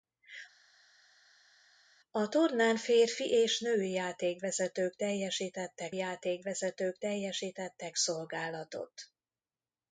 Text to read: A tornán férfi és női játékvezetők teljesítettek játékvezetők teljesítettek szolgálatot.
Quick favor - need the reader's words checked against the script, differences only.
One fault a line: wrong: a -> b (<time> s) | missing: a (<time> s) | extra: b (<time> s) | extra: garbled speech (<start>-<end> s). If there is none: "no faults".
no faults